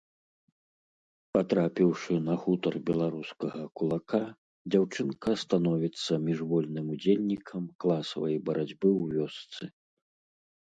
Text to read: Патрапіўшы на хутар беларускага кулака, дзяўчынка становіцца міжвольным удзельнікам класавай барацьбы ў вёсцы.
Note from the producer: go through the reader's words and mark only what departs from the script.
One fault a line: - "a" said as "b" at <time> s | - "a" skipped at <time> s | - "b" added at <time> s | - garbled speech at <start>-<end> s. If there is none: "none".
none